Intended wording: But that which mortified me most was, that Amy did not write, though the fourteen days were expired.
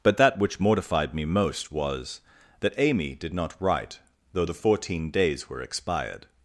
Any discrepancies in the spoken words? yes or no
no